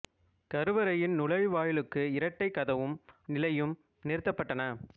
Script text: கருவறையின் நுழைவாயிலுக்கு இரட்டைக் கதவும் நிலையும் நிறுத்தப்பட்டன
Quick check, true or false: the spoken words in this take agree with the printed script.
true